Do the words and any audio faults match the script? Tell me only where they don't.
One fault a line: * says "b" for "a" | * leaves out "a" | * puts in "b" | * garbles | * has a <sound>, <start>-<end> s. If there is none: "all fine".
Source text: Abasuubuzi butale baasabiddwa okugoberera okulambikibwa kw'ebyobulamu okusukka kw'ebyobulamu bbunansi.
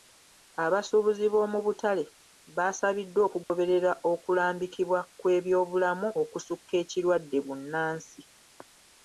* puts in "b'omu"
* has a dropout, 3.4-3.5 s
* says "ekirwadde" for "kw'ebyobulamu"